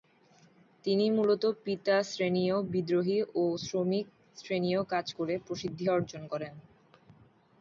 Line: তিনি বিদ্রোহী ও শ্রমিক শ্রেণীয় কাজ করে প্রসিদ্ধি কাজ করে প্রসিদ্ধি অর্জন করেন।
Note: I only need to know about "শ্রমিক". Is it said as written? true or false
true